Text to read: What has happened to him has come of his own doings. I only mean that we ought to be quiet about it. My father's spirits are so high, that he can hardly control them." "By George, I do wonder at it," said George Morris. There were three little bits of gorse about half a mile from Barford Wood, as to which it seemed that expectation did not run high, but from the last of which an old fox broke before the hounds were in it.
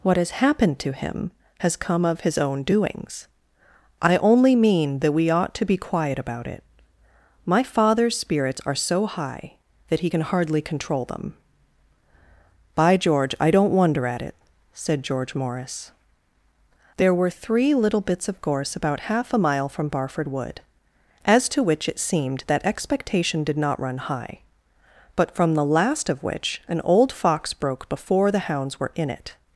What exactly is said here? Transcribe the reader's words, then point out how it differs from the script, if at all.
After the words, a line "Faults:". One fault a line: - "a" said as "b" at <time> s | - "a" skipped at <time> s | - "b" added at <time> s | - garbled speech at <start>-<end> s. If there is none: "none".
What has happened to him has come of his own doings. I only mean that we ought to be quiet about it. My father's spirits are so high, that he can hardly control them." "By George, I don't wonder at it," said George Morris. There were three little bits of gorse about half a mile from Barford Wood, as to which it seemed that expectation did not run high, but from the last of which an old fox broke before the hounds were in it.
Faults:
- "do" said as "don't" at 13.5 s